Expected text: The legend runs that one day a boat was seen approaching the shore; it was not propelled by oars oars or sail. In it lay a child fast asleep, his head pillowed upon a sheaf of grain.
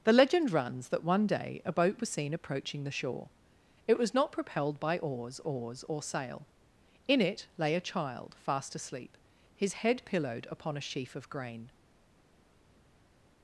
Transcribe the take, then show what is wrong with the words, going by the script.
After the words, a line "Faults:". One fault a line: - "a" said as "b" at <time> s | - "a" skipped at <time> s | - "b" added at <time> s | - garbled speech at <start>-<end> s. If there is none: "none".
The legend runs that one day a boat was seen approaching the shore; it was not propelled by oars oars or sail. In it lay a child fast asleep, his head pillowed upon a sheaf of grain.
Faults:
none